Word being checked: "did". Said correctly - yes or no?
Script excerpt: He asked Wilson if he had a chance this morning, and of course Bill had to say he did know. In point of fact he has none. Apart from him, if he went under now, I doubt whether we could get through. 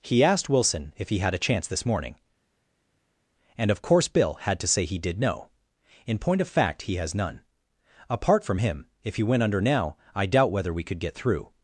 yes